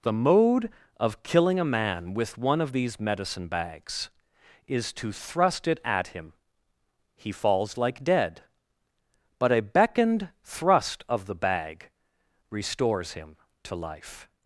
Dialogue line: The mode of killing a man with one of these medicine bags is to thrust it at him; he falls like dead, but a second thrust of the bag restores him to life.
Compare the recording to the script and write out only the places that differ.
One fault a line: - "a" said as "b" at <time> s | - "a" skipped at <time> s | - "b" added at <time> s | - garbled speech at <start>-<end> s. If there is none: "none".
- "second" said as "beckoned" at 9.6 s